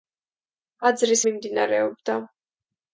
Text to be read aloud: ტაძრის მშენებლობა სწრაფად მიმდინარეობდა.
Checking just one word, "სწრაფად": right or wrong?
wrong